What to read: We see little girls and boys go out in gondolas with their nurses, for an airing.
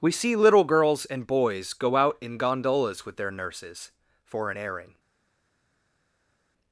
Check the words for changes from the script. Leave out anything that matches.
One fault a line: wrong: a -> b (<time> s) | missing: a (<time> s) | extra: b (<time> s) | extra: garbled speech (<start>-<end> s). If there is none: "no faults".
no faults